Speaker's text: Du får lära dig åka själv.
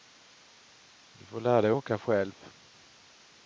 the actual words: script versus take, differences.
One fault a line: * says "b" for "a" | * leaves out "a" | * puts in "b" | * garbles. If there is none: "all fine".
all fine